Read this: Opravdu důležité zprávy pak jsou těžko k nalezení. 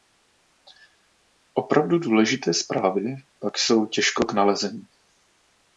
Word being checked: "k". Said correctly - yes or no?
yes